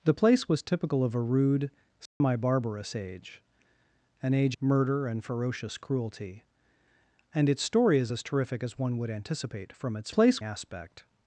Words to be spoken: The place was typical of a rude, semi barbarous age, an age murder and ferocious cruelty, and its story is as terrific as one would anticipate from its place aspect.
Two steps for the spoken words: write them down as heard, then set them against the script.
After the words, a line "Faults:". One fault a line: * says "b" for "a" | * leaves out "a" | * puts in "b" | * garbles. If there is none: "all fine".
The place was typical of a rude, semi barbarous age, an age murder and ferocious cruelty, and its story is as terrific as one would anticipate from its place aspect.
Faults:
all fine